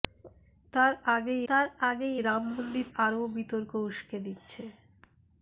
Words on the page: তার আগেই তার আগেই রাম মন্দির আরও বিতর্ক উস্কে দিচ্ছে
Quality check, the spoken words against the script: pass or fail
pass